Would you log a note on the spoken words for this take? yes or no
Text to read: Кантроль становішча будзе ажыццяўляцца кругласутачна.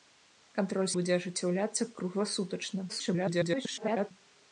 yes